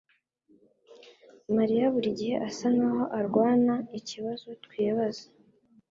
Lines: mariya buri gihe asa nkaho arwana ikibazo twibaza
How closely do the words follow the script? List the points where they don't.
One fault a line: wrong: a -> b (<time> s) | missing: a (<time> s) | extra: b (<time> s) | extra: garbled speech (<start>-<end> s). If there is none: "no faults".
no faults